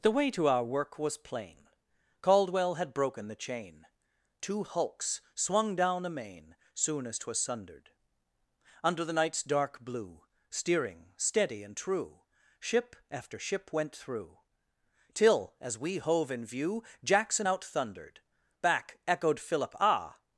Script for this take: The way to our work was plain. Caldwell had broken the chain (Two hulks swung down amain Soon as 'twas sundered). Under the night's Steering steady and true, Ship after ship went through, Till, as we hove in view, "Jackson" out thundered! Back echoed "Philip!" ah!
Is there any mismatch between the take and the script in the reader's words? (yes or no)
yes